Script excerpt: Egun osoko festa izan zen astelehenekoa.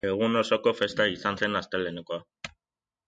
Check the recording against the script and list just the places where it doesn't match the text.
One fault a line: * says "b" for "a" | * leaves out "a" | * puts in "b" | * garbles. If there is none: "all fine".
all fine